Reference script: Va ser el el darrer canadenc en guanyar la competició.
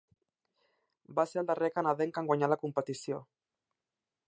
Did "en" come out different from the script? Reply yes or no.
no